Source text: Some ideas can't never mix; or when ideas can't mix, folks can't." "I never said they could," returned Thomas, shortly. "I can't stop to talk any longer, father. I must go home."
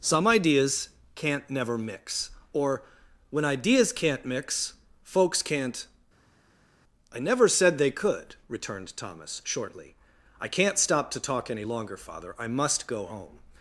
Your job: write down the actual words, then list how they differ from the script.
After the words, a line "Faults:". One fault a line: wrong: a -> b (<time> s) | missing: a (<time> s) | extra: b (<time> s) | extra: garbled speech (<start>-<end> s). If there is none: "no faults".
Some ideas can't never mix; or when ideas can't mix, folks can't." "I never said they could," returned Thomas, shortly. "I can't stop to talk any longer, father. I must go home."
Faults:
no faults